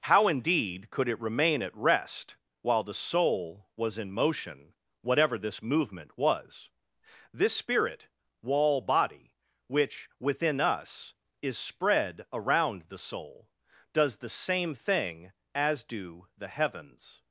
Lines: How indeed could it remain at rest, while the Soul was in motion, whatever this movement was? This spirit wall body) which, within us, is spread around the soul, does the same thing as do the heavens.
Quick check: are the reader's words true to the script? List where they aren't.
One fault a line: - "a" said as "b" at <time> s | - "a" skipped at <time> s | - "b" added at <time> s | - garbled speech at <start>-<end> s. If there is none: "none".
none